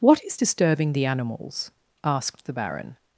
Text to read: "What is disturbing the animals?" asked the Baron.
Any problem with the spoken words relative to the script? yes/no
no